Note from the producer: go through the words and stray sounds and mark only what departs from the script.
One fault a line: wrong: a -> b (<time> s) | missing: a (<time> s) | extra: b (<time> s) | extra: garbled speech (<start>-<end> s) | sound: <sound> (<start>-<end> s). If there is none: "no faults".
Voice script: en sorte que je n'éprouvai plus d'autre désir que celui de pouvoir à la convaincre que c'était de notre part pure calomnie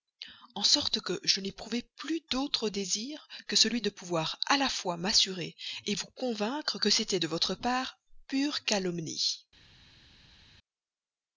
extra: fois m'assurer vous (4.7 s)
wrong: notre -> votre (7.3 s)